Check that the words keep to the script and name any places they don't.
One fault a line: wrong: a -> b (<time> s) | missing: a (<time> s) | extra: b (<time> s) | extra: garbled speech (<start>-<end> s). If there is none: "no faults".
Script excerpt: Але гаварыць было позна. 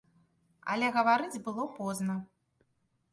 no faults